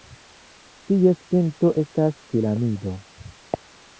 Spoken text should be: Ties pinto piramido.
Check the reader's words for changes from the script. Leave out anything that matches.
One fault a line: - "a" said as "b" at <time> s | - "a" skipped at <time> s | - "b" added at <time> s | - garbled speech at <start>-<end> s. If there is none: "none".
- "estas" added at 1.8 s